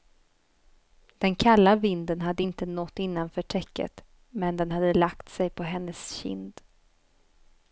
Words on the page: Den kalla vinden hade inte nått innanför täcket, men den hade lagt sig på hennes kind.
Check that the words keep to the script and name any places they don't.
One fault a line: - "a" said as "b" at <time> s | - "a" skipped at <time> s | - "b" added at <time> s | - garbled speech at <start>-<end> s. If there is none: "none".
none